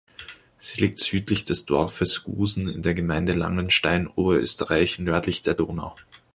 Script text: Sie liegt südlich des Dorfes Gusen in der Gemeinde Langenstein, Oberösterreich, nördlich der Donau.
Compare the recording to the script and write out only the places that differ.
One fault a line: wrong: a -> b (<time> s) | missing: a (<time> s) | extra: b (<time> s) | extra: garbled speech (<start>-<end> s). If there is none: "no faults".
no faults